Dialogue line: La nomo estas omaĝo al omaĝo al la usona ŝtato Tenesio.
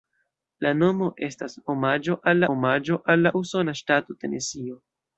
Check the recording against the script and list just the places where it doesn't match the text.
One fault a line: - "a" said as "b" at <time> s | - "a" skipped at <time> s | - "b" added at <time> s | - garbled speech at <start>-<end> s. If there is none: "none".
none